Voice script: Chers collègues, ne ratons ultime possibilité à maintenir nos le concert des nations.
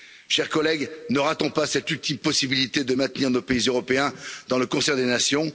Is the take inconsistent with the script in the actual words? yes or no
yes